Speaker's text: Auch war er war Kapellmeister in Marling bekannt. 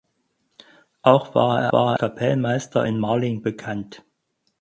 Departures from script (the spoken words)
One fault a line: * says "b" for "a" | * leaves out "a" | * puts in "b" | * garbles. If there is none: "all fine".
all fine